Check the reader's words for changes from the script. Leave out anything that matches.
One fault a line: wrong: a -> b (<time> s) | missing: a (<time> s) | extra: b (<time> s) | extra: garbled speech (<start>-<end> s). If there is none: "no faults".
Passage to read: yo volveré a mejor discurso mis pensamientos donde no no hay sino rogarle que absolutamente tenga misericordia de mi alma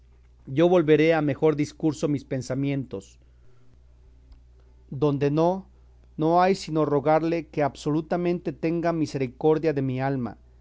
no faults